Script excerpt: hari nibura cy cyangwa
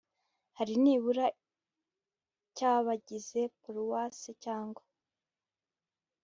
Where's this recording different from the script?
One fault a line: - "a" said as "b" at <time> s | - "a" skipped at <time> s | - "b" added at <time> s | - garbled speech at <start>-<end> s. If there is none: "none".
- "abagize paruwase" added at 2.7 s